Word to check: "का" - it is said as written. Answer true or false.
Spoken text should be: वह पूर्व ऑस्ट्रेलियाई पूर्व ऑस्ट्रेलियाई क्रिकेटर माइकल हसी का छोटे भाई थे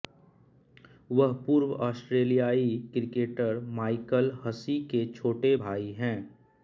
false